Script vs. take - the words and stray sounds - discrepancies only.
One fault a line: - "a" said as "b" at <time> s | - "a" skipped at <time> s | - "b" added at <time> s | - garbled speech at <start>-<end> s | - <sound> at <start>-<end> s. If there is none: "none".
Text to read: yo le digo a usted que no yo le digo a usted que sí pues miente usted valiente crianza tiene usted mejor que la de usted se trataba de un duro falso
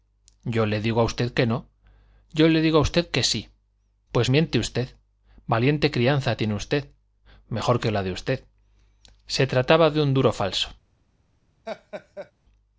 - laugh at 11.7-12.3 s